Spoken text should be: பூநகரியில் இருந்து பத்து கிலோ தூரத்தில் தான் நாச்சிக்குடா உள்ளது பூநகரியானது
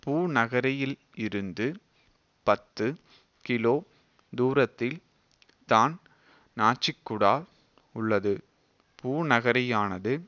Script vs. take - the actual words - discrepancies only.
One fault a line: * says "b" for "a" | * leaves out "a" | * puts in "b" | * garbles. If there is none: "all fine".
all fine